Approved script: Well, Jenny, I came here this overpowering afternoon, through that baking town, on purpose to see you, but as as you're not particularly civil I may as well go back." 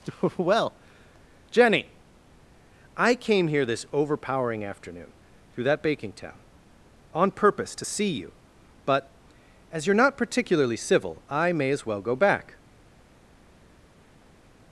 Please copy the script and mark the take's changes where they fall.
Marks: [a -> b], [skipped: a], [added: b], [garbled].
Well, Jenny, I came here this overpowering afternoon, through that baking town, on purpose to see you, but as [skipped: as] you're not particularly civil I may as well go back."